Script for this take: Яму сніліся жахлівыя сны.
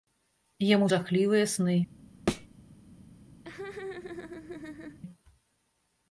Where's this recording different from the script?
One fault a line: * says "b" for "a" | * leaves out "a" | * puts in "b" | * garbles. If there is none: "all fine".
* leaves out "сніліся"